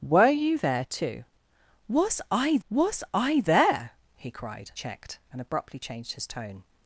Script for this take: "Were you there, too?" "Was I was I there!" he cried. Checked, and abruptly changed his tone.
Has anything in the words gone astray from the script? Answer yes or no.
no